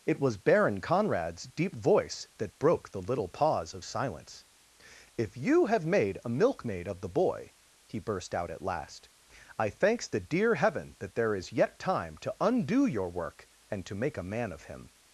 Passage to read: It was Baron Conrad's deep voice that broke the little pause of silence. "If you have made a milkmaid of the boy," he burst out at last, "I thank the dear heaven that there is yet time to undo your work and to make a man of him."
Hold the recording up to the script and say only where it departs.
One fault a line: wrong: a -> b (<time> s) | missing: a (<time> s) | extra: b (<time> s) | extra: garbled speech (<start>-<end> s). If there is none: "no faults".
wrong: thank -> thanks (9.7 s)